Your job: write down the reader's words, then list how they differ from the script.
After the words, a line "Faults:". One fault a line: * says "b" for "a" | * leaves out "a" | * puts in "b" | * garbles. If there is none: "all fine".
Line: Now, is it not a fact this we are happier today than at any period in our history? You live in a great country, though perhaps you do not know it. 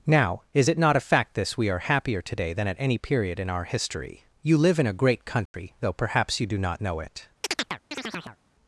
Now, is it not a fact this we are happier today than at any period in our history? You live in a great country, though perhaps you do not know it.
Faults:
all fine